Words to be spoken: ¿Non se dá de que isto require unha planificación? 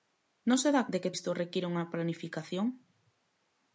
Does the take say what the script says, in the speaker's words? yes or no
yes